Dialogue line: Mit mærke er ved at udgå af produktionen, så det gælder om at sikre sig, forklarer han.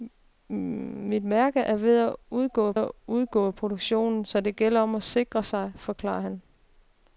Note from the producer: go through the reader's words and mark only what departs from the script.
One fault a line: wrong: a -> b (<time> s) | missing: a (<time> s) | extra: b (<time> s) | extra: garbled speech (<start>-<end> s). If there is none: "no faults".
extra: at udgå af (2.7 s)